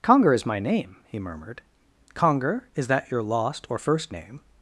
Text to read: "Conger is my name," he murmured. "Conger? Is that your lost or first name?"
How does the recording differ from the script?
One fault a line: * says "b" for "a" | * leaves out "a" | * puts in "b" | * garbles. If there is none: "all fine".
all fine